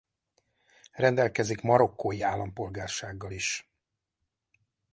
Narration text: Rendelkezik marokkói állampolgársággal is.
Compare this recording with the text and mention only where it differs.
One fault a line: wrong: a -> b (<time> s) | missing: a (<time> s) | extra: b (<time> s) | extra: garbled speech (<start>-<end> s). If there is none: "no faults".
no faults